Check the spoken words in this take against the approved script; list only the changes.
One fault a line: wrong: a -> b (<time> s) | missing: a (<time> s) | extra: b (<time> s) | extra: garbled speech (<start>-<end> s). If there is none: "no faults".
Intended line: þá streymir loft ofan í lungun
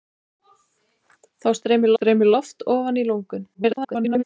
extra: streymir (1.9 s)
extra: garbled speech (3.5-4.2 s)